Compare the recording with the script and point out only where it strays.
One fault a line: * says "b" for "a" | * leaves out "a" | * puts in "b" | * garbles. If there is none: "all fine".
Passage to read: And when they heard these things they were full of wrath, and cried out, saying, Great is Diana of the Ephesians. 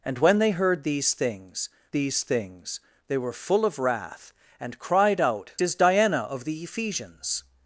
* puts in "these things"
* leaves out "saying Great"